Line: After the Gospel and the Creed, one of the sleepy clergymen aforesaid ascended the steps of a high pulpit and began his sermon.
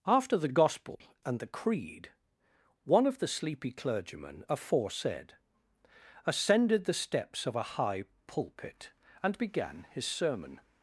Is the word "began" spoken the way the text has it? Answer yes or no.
yes